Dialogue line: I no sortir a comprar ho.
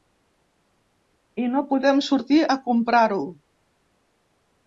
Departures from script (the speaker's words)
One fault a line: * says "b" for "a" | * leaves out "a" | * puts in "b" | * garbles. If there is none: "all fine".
* puts in "podem"